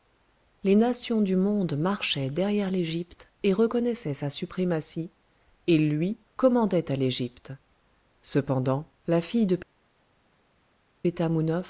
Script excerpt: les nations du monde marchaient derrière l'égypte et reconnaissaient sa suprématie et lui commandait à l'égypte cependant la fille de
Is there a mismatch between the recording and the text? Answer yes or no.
no